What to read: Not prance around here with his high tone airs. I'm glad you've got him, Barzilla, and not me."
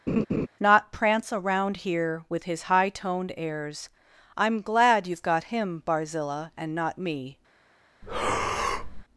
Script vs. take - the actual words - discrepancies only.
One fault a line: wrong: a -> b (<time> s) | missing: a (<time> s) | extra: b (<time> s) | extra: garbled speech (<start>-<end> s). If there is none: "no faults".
wrong: tone -> toned (2.9 s)